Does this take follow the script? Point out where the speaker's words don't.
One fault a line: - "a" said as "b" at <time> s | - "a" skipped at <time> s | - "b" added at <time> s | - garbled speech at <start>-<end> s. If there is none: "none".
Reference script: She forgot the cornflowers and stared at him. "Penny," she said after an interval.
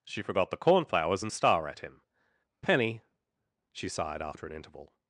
- "stared" said as "star" at 1.3 s
- "said" said as "sighed" at 3.9 s